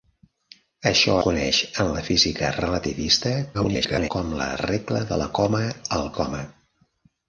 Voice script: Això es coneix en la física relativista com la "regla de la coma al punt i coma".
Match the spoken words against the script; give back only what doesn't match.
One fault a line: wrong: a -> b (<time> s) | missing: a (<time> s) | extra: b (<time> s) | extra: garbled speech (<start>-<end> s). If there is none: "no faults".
missing: es (1.2 s)
extra: garbled speech (3.5-4.1 s)
missing: punt (6.1 s)